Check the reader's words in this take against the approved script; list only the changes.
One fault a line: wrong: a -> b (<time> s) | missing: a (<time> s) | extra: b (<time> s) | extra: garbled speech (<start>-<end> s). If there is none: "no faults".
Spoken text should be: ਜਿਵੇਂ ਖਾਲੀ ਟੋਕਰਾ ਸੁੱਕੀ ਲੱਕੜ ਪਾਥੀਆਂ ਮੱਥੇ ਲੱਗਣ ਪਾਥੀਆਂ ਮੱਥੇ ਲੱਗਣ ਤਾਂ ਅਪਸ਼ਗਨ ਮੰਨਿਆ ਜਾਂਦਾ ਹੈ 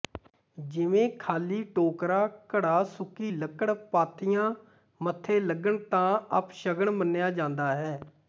extra: ਘੜਾ (2.5 s)
missing: ਪਾਥੀਆਂ ਮੱਥੇ ਲੱਗਣ (5.8 s)